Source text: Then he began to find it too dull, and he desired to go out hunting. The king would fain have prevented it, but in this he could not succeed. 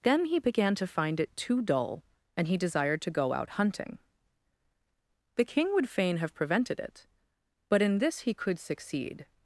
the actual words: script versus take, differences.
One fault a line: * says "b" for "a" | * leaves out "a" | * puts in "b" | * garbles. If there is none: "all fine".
* leaves out "not"